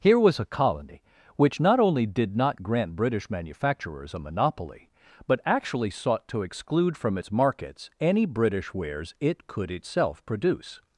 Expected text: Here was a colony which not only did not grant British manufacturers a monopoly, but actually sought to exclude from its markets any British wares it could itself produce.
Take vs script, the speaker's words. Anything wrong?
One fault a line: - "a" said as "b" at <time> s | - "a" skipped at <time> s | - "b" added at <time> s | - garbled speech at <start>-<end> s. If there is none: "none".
none